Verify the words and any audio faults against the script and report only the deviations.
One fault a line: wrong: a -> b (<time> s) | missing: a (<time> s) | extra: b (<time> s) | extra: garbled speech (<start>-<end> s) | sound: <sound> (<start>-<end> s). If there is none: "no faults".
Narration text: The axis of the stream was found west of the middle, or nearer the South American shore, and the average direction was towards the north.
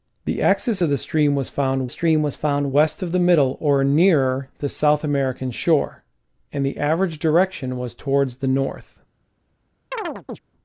extra: stream was found (1.9 s)
sound: chirp (9.9-10.4 s)